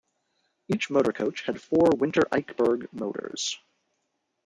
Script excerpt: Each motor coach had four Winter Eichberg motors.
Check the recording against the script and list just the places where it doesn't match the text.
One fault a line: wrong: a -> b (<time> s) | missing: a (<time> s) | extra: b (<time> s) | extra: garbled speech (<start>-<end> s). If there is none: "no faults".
no faults